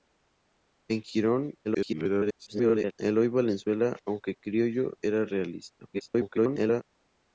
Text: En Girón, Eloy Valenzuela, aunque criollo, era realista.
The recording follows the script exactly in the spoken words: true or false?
false